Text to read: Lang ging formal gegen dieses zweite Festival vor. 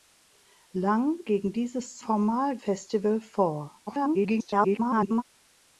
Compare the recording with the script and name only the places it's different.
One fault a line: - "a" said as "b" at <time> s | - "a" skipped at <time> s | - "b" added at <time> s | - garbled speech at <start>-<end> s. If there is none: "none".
- "ging formal" skipped at 1.2 s
- "zweite" said as "formal" at 2.0 s
- garbled speech at 3.9-5.2 s